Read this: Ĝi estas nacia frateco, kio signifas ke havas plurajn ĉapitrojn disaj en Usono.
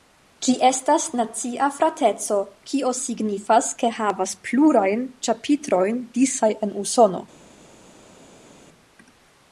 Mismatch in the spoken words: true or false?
false